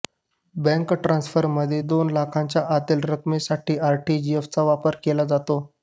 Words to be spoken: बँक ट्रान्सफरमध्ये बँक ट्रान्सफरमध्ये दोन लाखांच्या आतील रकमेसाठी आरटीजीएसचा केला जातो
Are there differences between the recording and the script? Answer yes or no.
yes